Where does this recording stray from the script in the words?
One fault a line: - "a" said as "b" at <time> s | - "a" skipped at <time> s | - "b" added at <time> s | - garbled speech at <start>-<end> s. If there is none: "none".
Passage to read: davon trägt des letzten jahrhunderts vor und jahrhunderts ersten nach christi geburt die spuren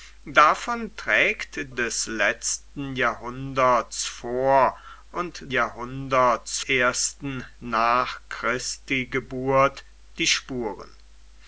none